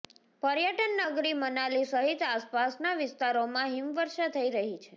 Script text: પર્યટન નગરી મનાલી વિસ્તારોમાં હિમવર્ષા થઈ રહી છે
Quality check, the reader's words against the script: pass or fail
fail